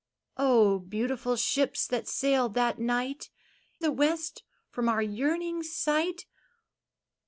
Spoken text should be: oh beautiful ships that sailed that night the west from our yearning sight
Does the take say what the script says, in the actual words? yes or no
yes